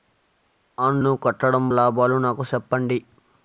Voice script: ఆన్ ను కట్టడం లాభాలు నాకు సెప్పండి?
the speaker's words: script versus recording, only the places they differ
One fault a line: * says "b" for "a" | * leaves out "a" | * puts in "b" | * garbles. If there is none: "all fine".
all fine